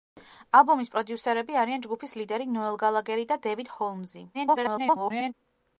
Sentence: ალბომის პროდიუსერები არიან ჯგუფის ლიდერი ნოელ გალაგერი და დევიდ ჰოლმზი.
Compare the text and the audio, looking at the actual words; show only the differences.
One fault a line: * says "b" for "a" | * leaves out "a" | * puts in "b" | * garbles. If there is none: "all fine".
* garbles